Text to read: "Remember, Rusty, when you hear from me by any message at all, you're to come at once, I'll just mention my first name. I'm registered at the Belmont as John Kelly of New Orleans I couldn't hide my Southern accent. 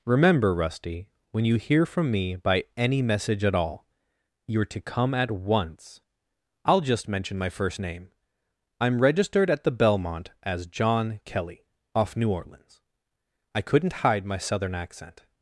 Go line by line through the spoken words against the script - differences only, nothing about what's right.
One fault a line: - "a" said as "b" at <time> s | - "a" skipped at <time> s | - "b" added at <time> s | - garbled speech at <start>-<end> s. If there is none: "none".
- "of" said as "off" at 11.9 s